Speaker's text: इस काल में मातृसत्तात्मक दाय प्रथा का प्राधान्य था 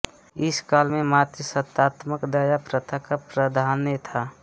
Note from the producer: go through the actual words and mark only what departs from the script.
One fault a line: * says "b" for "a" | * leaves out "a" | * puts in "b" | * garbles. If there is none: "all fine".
all fine